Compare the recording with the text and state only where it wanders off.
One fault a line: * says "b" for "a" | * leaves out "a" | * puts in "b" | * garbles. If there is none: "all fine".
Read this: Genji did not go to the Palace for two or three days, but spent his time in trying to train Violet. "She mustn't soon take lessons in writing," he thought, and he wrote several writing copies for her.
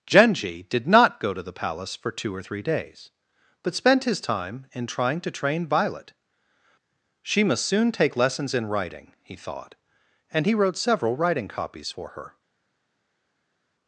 * says "must" for "mustn't"